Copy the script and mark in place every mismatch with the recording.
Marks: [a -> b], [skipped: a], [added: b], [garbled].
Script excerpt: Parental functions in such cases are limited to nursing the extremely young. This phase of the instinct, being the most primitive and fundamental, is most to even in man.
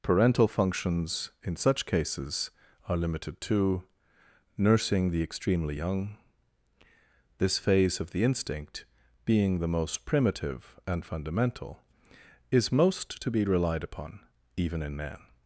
Parental functions in such cases are limited to nursing the extremely young. This phase of the instinct, being the most primitive and fundamental, is most to [added: be relied upon] even in man.